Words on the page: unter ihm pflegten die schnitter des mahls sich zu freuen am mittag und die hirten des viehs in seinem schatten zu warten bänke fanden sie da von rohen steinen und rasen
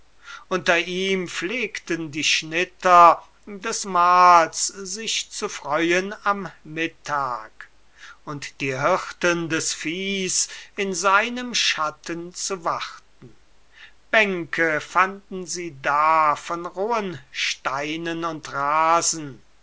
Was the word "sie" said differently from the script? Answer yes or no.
no